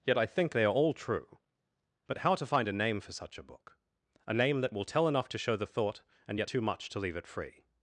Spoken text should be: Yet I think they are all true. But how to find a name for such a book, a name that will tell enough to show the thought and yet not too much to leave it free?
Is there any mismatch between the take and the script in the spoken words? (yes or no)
yes